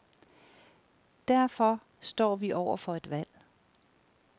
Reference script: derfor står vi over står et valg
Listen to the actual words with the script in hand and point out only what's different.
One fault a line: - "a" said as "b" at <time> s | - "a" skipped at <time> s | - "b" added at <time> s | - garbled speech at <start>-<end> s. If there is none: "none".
- "står" said as "for" at 2.8 s